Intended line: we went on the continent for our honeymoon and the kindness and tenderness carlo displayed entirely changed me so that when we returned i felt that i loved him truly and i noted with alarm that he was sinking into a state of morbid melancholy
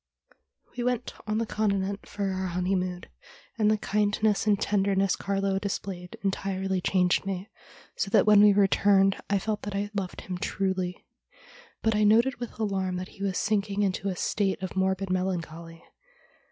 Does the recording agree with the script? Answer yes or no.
no